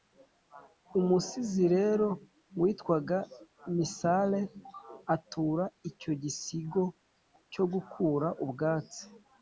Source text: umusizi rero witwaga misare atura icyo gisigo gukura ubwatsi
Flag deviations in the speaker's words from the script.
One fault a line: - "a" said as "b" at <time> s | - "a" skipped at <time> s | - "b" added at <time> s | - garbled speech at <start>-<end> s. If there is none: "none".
- "cyo" added at 7.5 s